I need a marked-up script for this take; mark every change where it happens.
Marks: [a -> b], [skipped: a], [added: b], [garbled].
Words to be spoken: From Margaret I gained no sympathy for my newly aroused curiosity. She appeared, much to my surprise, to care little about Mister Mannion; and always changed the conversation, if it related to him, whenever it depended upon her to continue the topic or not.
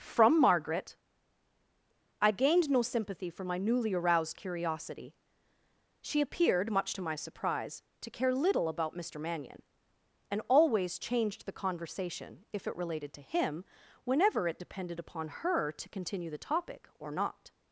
From Margaret I gained no sympathy for my newly aroused curiosity. She appeared, much to my surprise, to care little about Mister Mannion; and always changed the conversation, if it related to him, whenever it depended upon her to continue the topic or not.